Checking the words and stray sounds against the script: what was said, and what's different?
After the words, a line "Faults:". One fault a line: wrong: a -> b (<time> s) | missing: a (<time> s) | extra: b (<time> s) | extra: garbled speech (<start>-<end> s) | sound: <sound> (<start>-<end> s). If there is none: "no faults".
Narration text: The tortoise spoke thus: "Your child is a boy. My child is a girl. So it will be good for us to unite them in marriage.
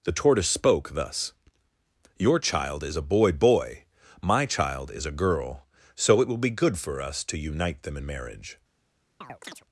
The tortoise spoke thus: "Your child is a boy boy. My child is a girl. So it will be good for us to unite them in marriage.
Faults:
extra: boy (3.3 s)
sound: chirp (9.2-9.6 s)